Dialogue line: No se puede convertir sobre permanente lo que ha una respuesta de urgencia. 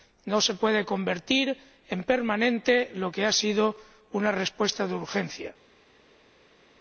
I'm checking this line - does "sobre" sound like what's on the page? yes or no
no